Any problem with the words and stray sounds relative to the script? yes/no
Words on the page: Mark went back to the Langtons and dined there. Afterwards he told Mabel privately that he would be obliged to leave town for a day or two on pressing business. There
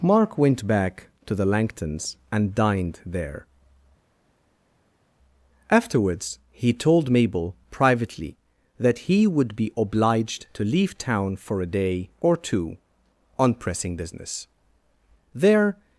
no